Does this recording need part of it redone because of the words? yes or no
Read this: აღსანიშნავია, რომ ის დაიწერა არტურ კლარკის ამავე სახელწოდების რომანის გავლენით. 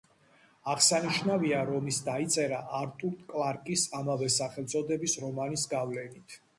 no